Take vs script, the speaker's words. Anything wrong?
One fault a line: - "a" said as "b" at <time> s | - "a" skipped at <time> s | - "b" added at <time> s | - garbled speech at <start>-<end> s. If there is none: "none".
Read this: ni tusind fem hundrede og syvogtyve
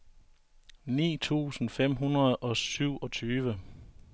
none